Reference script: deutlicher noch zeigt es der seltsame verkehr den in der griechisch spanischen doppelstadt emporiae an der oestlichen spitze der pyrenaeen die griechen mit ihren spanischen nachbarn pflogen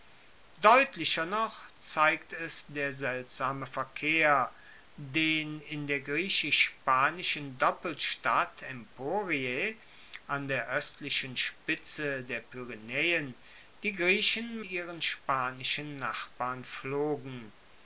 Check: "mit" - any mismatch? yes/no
yes